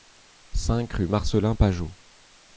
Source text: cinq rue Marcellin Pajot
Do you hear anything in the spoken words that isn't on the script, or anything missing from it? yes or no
no